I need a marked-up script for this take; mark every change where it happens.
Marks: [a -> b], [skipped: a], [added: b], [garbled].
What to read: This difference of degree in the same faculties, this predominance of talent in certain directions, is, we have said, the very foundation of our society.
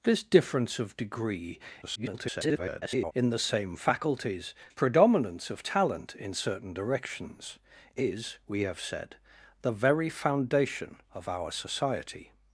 This difference of degree [garbled] in the same faculties, [skipped: this] predominance of talent in certain directions, is, we have said, the very foundation of our society.